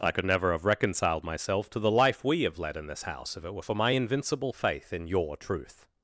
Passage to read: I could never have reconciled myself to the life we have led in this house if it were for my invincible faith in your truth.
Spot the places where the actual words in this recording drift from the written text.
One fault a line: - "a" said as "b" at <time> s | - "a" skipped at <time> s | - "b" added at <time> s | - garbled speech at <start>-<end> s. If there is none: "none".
none